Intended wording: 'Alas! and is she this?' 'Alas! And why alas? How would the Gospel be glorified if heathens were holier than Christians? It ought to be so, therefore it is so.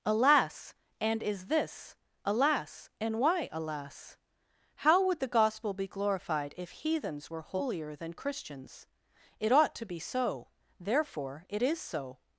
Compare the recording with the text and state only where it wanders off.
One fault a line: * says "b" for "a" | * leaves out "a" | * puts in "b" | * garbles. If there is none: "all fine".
* leaves out "she"